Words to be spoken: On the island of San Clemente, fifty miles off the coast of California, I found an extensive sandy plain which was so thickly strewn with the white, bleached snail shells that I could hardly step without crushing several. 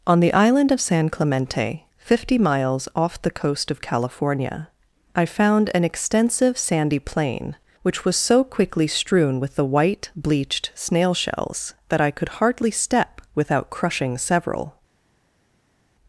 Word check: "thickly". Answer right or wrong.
wrong